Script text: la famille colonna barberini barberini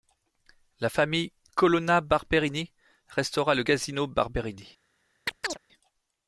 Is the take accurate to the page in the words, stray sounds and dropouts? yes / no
no